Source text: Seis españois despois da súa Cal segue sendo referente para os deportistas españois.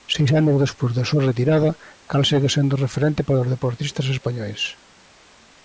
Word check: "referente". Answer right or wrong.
right